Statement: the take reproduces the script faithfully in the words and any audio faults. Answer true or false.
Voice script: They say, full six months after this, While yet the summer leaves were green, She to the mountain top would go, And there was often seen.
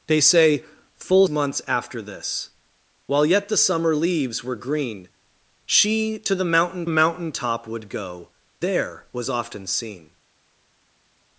false